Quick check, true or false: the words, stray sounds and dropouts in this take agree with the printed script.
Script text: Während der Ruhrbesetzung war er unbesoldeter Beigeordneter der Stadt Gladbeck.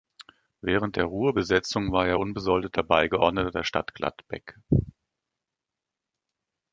true